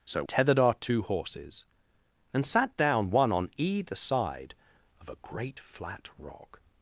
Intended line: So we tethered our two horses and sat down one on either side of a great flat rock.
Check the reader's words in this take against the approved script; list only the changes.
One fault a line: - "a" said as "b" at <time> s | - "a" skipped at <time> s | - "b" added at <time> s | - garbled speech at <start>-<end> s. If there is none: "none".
- "we" skipped at 0.2 s